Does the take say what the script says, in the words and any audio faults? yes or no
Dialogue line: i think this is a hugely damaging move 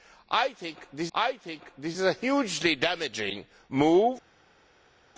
no